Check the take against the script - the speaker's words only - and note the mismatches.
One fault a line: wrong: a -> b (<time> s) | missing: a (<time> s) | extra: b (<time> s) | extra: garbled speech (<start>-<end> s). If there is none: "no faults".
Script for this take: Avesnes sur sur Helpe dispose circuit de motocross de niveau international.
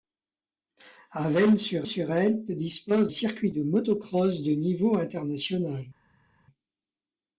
no faults